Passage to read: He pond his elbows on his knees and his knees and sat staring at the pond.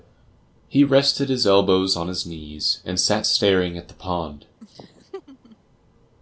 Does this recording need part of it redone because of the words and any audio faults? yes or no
yes